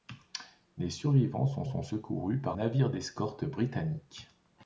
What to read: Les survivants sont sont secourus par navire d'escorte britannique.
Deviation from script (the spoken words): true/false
false